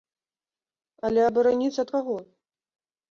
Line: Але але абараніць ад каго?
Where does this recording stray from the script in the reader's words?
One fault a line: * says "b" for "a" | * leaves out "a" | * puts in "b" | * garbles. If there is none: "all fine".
* leaves out "але"